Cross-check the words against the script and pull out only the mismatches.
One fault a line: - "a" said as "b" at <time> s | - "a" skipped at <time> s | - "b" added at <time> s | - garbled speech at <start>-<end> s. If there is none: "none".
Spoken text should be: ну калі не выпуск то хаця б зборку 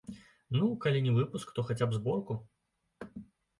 none